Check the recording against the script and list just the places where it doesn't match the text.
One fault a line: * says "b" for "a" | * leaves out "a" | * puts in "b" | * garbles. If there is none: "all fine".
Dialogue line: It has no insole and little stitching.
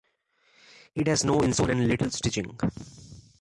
all fine